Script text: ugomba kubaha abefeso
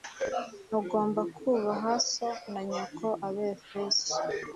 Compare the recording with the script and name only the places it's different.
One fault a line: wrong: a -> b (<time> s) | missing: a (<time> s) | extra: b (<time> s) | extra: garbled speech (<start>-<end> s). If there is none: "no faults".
extra: so na nyoko (2.1 s)